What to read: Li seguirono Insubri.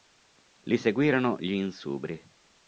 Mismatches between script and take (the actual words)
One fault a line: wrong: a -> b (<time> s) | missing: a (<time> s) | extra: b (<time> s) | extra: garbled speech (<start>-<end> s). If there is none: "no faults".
extra: gli (1.4 s)